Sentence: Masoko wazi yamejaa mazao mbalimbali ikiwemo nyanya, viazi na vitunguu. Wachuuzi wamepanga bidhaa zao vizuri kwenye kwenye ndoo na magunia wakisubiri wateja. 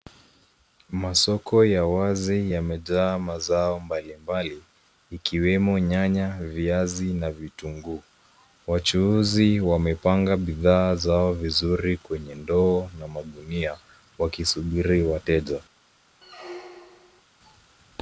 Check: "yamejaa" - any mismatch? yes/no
no